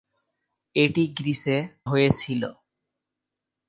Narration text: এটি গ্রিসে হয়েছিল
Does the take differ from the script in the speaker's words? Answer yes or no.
no